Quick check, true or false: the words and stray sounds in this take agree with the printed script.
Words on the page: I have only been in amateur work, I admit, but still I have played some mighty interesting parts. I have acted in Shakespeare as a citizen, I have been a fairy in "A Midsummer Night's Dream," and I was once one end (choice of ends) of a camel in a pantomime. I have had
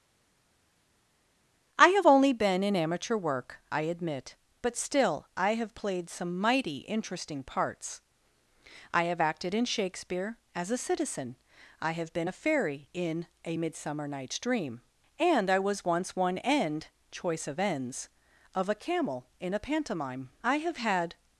true